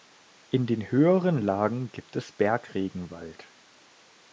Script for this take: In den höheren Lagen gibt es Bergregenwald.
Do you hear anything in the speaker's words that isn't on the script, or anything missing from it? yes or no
no